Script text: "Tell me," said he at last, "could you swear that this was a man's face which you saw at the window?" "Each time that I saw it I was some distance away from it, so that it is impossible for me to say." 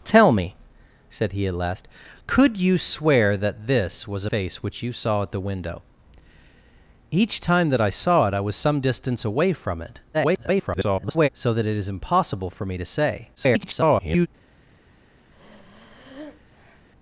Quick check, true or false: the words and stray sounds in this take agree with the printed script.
false